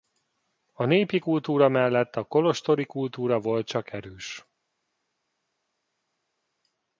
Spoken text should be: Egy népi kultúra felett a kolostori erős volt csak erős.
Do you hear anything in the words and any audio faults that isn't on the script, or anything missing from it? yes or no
yes